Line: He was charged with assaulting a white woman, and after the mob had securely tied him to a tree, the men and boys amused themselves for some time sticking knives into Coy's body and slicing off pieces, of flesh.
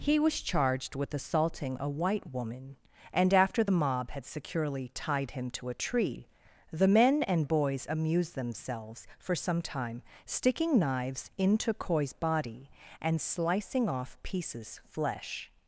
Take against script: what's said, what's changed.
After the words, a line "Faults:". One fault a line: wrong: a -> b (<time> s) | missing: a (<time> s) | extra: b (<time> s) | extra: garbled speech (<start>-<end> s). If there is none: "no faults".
He was charged with assaulting a white woman, and after the mob had securely tied him to a tree, the men and boys amused themselves for some time sticking knives into Coy's body and slicing off pieces, of flesh.
Faults:
no faults